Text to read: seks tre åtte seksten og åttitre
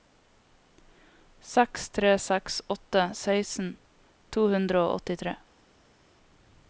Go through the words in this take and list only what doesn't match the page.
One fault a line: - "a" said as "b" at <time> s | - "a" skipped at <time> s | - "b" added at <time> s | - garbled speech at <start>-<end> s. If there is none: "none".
- "seks" added at 2.2 s
- "to hundre" added at 4.4 s